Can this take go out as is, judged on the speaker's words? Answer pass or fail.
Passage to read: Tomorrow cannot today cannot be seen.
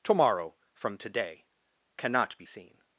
fail